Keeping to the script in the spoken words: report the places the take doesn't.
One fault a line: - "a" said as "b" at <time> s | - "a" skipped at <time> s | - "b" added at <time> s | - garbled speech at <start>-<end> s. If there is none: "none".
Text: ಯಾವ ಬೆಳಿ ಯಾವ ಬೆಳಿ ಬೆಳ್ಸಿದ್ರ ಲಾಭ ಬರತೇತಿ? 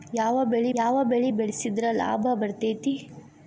none